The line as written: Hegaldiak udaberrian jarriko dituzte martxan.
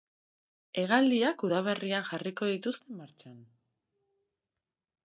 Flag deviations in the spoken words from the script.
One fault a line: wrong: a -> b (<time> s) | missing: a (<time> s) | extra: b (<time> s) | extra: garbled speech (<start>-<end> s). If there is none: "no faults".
no faults